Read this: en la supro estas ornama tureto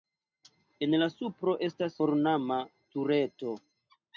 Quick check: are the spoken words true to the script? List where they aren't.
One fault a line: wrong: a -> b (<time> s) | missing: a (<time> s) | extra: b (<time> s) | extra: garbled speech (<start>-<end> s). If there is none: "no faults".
no faults